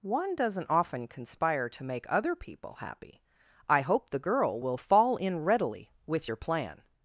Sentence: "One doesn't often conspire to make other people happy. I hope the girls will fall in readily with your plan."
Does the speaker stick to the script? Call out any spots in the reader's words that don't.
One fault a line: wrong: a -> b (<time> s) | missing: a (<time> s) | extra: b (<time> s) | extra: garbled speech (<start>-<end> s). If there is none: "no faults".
wrong: girls -> girl (4.2 s)